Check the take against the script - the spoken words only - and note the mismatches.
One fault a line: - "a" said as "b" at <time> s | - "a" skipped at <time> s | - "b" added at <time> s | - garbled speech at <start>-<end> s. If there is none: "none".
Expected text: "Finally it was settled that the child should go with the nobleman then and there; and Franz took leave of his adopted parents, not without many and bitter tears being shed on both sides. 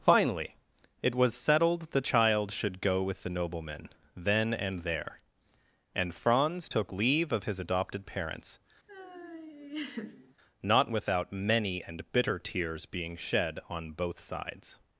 - "that" skipped at 1.9 s